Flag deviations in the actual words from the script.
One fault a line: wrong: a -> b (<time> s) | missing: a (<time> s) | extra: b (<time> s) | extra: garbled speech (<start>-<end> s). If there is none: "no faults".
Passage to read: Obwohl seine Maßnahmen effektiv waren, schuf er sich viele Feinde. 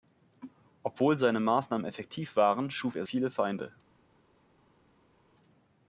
missing: sich (3.0 s)